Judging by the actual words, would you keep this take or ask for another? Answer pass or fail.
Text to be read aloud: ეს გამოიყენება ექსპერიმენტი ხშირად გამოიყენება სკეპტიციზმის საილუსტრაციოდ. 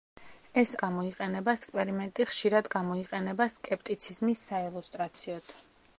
pass